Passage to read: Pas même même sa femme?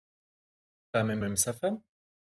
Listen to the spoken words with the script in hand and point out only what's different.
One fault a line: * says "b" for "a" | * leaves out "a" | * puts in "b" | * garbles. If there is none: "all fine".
all fine